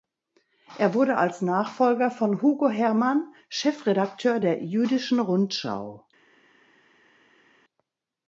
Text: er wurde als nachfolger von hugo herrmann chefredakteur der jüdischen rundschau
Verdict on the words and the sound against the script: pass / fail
pass